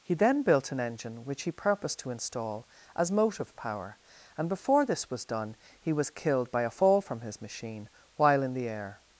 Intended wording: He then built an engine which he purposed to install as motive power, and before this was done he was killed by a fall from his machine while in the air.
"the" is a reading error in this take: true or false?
false